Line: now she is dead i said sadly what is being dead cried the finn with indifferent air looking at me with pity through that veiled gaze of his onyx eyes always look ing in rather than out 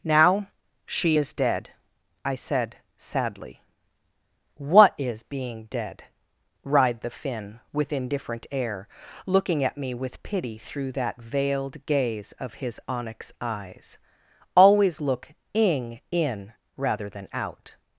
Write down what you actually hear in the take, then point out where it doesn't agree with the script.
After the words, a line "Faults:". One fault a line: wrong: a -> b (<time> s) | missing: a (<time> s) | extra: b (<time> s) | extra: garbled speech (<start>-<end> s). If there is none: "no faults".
now she is dead i said sadly what is being dead writhed the finn with indifferent air looking at me with pity through that veiled gaze of his onyx eyes always look ing in rather than out
Faults:
wrong: cried -> writhed (6.6 s)